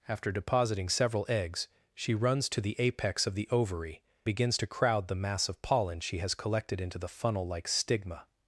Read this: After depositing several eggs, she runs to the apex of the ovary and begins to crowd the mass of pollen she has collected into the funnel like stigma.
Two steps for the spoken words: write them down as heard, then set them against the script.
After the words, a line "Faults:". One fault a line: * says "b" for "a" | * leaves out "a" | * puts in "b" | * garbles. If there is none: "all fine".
After depositing several eggs, she runs to the apex of the ovary begins to crowd the mass of pollen she has collected into the funnel like stigma.
Faults:
* leaves out "and"